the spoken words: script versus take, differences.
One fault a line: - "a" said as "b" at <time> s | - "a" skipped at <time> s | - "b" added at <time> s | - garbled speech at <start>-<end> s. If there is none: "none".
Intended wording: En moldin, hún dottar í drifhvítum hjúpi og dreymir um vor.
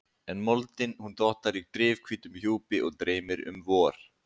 none